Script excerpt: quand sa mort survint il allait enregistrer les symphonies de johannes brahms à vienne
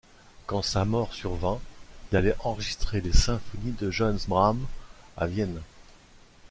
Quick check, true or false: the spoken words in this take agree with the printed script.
true